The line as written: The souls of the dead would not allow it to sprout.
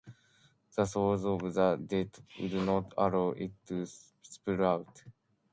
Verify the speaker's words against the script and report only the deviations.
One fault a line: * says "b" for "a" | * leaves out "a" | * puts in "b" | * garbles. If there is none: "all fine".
all fine